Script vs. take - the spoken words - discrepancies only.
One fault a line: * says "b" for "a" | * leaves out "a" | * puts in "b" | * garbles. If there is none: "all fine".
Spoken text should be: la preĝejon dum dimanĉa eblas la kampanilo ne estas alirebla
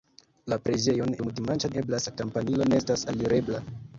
all fine